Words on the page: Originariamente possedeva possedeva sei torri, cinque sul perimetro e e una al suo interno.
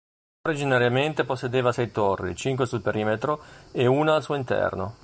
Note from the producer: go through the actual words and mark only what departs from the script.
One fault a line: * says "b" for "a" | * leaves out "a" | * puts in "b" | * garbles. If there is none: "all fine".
* leaves out "possedeva"
* leaves out "e"